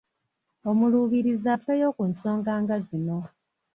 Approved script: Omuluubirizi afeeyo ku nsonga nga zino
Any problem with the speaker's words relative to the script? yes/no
no